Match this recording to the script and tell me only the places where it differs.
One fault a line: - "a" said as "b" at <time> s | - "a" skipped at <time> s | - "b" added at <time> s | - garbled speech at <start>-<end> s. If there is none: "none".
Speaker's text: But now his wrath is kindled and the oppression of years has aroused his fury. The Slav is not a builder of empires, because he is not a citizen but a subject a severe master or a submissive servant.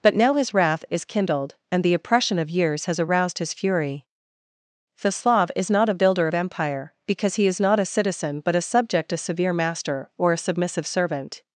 - "empires" said as "empire" at 6.3 s